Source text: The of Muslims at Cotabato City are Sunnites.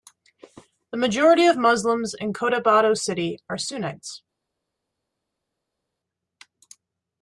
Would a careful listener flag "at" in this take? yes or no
yes